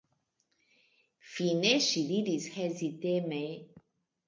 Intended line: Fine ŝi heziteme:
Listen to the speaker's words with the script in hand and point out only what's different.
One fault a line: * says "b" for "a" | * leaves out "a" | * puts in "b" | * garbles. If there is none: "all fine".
* puts in "diris"